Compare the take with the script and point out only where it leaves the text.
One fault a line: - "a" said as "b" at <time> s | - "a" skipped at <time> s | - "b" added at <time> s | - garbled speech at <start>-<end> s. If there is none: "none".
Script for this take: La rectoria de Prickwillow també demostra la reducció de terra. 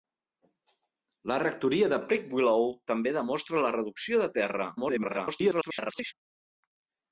- garbled speech at 4.8-6.1 s